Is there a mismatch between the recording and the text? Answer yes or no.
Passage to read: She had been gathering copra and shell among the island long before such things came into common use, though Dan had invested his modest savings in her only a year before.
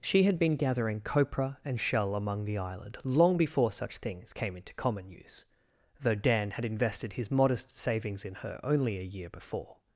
no